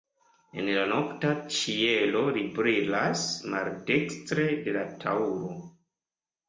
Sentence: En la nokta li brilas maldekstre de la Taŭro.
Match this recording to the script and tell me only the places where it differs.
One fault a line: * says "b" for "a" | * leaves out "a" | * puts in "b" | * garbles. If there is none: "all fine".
* puts in "ĉielo"